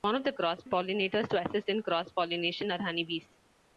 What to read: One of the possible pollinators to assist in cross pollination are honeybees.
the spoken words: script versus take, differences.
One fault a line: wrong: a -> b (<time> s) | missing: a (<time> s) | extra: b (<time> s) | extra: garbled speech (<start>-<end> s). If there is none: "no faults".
wrong: possible -> cross (0.3 s)